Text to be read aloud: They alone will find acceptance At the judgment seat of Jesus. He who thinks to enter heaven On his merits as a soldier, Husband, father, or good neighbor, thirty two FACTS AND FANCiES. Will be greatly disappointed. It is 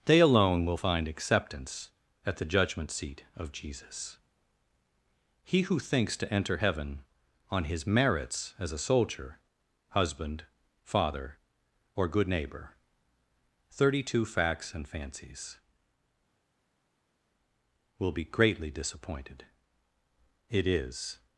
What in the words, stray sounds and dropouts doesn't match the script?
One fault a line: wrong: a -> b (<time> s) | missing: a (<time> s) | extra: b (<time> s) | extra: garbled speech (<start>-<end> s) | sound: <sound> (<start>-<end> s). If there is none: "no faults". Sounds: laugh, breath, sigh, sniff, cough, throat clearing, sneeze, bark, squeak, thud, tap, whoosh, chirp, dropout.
no faults